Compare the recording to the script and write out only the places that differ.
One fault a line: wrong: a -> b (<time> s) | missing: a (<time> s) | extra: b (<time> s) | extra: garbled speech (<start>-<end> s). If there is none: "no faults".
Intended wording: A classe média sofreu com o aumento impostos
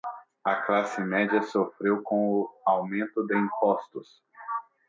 extra: de (3.3 s)